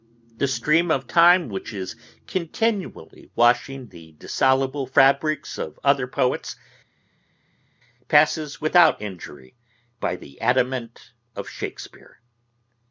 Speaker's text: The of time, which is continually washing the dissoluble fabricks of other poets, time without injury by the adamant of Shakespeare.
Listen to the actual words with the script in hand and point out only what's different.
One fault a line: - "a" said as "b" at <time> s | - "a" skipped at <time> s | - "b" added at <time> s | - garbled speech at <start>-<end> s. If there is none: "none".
- "stream" added at 0.5 s
- "time" said as "passes" at 8.1 s